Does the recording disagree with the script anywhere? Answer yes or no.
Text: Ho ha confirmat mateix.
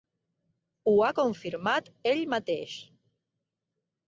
yes